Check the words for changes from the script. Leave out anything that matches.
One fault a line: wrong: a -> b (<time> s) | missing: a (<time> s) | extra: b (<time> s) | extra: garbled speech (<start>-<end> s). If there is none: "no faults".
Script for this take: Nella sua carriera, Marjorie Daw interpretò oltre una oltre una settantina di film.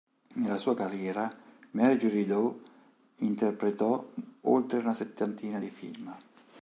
missing: oltre una (4.9 s)